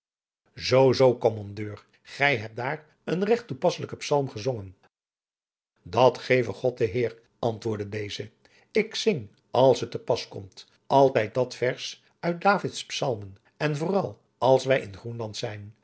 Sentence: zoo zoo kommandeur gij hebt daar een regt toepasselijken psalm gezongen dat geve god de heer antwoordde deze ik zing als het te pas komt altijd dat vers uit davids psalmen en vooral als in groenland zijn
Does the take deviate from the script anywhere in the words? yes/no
yes